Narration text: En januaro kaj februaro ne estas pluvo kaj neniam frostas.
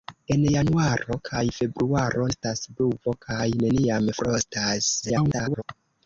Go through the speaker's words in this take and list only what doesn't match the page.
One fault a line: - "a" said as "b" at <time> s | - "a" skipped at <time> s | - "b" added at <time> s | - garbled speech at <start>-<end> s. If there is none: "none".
- "ne" skipped at 2.3 s
- garbled speech at 5.0-5.6 s